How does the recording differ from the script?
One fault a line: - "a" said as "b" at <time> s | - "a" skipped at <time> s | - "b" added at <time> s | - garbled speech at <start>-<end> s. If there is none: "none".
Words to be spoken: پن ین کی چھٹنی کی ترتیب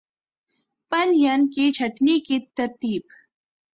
none